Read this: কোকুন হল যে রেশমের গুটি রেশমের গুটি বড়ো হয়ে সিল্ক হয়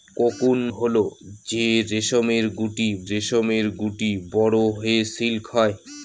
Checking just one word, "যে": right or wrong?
right